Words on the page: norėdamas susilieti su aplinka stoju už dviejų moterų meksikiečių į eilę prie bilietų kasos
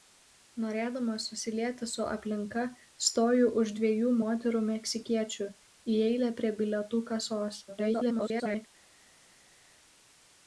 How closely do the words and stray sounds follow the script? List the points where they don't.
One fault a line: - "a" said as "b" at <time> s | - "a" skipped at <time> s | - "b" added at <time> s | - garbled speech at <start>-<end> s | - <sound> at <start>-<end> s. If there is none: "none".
- garbled speech at 7.7-8.7 s